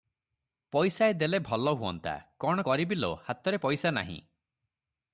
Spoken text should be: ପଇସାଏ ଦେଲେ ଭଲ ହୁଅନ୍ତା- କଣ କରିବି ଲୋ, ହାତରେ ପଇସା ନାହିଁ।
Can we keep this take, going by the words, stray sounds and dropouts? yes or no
yes